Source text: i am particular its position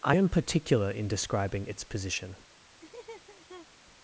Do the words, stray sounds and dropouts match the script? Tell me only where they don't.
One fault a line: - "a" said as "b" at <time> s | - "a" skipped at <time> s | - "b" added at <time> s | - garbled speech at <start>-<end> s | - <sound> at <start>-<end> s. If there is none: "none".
- "in describing" added at 0.9 s
- laugh at 2.8-3.7 s